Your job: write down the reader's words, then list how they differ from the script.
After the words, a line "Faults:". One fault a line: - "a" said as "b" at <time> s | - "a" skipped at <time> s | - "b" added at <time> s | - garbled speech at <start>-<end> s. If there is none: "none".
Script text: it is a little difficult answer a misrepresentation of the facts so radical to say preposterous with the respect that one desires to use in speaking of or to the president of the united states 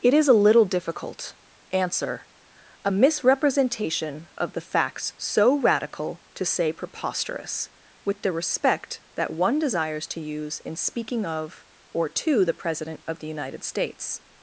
it is a little difficult answer a misrepresentation of the facts so radical to say preposterous with the respect that one desires to use in speaking of or to the president of the united states
Faults:
none